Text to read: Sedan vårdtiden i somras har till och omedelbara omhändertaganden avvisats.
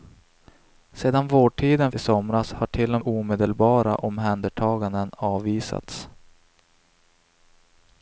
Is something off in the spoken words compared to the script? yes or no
no